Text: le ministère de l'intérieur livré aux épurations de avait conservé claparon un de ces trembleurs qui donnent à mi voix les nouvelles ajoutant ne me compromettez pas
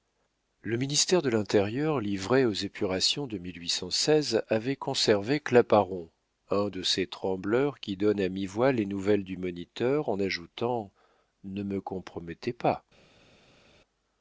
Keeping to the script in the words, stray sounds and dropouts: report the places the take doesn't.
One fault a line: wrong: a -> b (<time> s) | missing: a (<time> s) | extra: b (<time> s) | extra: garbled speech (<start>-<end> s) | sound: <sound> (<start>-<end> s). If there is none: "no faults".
extra: du moniteur en (9.2 s)